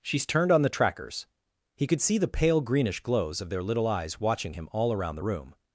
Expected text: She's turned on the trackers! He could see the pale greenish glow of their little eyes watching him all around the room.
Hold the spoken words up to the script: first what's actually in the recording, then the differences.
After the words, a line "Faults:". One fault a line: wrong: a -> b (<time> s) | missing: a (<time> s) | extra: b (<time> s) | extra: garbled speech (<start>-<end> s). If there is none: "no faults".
She's turned on the trackers! He could see the pale greenish glows of their little eyes watching him all around the room.
Faults:
wrong: glow -> glows (3.0 s)